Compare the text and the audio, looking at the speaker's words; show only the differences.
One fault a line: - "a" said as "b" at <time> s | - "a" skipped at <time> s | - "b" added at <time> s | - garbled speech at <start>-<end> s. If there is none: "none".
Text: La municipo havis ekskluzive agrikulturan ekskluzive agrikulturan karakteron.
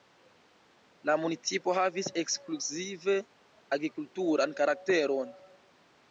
- "ekskluzive agrikulturan" skipped at 4.6 s